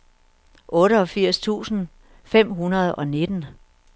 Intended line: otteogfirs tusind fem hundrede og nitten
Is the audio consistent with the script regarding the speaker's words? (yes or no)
yes